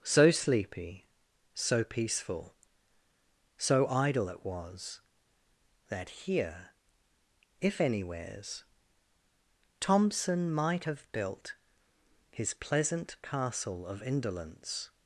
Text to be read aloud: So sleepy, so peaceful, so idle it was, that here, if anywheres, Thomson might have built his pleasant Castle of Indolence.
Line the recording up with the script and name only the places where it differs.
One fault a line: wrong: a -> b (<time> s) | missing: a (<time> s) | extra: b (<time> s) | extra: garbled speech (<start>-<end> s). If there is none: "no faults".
no faults